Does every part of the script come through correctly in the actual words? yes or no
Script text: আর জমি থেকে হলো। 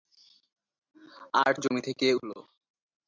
yes